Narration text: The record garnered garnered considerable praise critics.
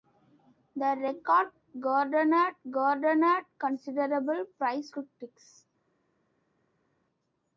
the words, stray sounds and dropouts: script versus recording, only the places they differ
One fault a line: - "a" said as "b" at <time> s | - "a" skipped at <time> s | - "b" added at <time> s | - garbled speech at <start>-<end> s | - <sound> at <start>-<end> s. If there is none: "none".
none